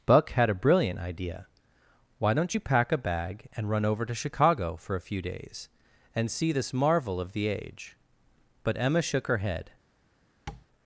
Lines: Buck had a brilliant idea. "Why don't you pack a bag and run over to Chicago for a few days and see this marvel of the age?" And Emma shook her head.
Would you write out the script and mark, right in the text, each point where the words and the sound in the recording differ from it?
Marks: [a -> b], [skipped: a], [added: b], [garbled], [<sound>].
Buck had a brilliant idea. "Why don't you pack a bag and run over to Chicago for a few days and see this marvel of the age?" [And -> But] Emma shook her head. [tap]